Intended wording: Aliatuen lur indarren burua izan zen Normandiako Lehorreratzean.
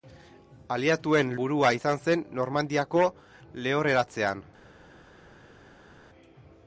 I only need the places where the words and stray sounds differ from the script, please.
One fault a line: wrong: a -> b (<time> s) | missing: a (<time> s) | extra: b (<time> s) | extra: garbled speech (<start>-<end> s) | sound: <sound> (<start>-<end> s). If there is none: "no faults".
missing: lur indarren (1.3 s)